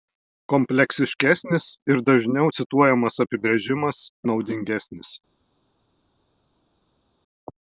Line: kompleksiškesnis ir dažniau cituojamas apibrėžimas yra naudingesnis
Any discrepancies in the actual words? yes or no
yes